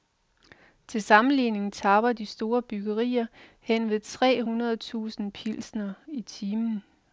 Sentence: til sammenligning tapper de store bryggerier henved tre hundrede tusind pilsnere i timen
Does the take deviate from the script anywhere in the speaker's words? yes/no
no